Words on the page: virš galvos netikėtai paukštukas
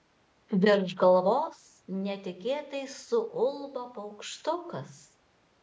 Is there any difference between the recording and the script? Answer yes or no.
yes